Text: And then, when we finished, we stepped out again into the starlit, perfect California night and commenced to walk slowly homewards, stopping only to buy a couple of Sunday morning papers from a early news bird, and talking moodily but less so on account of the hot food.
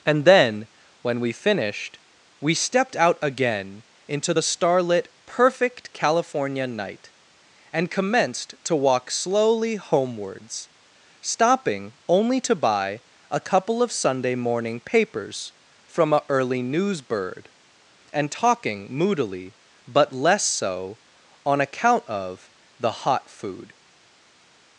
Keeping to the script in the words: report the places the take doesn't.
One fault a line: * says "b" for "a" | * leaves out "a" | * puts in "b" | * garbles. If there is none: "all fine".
all fine